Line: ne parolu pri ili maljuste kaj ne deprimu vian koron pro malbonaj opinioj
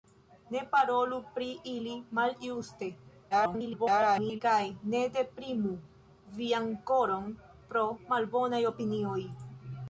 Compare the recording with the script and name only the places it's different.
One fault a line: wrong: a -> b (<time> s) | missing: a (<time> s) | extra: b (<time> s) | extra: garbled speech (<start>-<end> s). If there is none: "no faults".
extra: garbled speech (3.3-4.4 s)